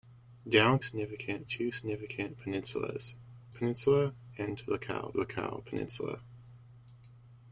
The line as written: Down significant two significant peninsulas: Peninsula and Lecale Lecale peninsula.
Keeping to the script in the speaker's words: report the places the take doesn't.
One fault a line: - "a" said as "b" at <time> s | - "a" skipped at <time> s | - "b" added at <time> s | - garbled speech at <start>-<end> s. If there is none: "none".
none